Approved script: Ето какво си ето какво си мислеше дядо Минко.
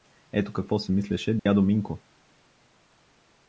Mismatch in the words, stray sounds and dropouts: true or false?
true